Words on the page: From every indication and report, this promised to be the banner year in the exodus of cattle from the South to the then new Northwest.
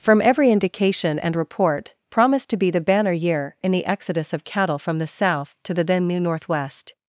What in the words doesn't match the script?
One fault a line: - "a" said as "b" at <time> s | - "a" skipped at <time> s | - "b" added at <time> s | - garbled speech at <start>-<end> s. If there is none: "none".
- "this" skipped at 1.9 s